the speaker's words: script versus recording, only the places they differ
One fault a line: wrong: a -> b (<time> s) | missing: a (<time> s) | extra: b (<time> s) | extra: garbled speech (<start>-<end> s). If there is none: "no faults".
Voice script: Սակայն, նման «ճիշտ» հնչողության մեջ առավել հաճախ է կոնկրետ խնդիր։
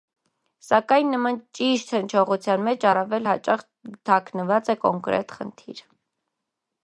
extra: թաքնված (4.1 s)